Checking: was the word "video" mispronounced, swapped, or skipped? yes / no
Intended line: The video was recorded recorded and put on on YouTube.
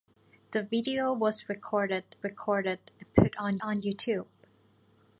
no